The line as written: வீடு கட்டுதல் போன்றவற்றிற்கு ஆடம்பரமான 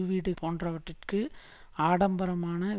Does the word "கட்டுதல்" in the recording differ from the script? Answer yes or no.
yes